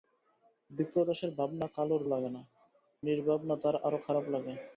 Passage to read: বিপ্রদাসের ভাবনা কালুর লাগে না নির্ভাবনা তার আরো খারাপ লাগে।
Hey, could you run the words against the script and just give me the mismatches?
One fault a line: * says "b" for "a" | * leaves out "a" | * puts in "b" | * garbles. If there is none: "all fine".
all fine